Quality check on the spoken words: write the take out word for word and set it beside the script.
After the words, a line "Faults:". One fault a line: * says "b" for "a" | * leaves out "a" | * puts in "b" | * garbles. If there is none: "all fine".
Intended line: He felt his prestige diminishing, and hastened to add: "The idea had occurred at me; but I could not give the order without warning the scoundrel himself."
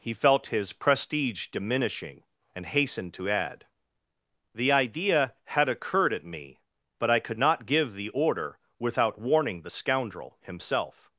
He felt his prestige diminishing, and hastened to add: "The idea had occurred at me; but I could not give the order without warning the scoundrel himself."
Faults:
all fine